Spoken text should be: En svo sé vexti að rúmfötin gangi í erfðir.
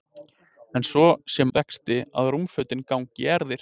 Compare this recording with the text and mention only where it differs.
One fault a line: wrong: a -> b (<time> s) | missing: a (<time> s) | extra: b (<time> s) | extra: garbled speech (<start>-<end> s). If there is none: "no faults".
no faults